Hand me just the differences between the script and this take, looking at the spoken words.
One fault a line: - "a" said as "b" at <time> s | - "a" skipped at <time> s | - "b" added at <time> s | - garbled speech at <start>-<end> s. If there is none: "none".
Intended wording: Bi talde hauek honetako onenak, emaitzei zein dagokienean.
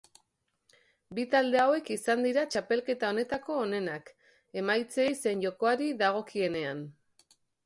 - "izan dira txapelketa" added at 1.9 s
- "jokoari" added at 5.5 s